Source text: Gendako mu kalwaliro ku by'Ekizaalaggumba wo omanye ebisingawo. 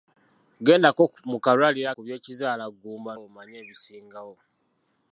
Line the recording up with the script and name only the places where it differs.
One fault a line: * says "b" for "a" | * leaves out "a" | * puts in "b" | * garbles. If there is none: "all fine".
all fine